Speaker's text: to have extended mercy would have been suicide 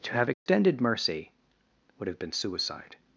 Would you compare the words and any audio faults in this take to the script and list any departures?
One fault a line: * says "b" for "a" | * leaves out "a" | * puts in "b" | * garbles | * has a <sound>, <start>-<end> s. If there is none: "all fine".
* has a dropout, 0.3-0.5 s